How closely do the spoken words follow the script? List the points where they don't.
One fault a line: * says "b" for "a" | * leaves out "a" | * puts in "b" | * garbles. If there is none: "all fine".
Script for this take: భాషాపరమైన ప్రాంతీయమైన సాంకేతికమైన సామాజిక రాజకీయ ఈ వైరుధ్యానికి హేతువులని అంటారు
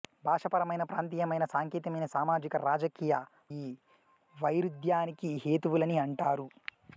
all fine